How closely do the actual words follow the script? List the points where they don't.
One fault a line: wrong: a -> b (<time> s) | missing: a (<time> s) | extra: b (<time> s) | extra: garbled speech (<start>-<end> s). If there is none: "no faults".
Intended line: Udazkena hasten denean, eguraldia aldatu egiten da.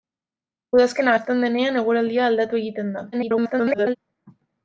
extra: garbled speech (3.1-4.0 s)